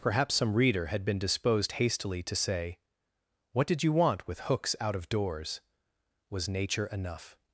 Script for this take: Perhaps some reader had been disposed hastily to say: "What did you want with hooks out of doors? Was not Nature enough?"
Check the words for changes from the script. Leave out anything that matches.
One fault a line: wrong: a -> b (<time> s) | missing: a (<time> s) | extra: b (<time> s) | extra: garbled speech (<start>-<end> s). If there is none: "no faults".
missing: not (6.5 s)